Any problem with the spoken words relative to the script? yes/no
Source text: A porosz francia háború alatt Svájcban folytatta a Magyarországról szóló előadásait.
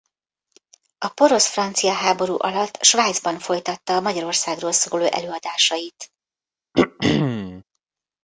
no